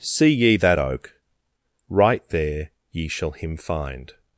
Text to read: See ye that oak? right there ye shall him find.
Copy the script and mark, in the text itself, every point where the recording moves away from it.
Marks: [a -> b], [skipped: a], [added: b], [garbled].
See ye that oak? right there ye shall him find.